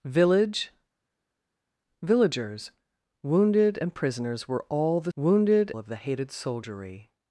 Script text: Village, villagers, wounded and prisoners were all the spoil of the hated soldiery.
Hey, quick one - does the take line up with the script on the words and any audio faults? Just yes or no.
no